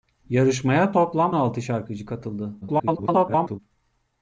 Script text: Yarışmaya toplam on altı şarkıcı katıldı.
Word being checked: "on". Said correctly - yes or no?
no